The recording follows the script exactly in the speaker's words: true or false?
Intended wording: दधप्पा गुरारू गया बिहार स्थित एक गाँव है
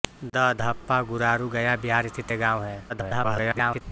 false